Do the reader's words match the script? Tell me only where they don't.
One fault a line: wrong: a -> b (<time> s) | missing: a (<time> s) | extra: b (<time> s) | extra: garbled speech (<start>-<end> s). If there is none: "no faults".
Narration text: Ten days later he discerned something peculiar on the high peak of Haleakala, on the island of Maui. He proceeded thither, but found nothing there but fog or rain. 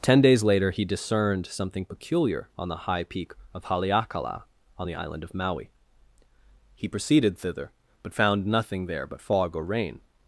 no faults